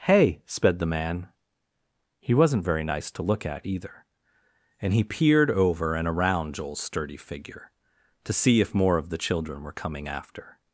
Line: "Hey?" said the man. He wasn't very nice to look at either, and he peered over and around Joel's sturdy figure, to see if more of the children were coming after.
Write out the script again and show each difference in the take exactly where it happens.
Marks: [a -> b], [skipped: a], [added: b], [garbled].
"Hey?" [said -> sped] the man. He wasn't very nice to look at either, and he peered over and around Joel's sturdy figure, to see if more of the children were coming after.